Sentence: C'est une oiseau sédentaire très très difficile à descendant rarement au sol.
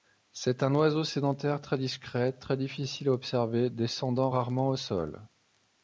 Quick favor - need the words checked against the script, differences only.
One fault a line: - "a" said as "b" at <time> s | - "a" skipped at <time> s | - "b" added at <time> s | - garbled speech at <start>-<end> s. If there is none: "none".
- "une" said as "un" at 0.6 s
- "discret" added at 1.8 s
- "observer" added at 3.1 s